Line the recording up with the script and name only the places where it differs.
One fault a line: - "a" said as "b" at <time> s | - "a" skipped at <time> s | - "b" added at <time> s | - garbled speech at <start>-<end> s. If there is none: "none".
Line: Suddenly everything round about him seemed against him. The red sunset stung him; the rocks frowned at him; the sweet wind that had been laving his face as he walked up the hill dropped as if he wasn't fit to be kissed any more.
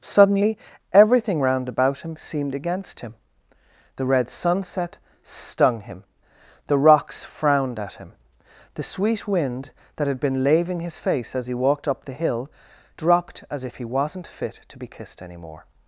none